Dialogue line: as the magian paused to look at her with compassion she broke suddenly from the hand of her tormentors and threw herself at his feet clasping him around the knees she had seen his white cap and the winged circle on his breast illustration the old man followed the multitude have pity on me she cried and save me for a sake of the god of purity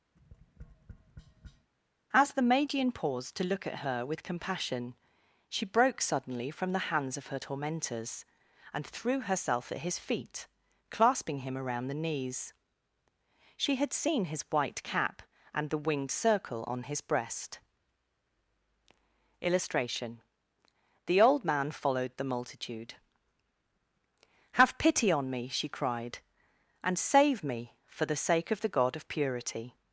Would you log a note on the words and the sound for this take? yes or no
yes